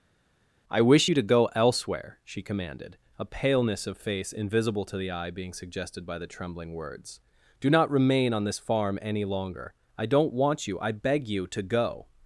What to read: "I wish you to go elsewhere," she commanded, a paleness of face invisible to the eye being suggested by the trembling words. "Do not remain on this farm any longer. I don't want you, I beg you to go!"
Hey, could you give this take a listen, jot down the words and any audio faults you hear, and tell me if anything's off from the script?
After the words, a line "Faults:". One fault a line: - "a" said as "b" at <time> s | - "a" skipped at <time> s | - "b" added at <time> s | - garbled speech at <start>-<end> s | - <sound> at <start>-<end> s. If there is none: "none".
"I wish you to go elsewhere," she commanded, a paleness of face invisible to the eye being suggested by the trembling words. "Do not remain on this farm any longer. I don't want you, I beg you to go!"
Faults:
none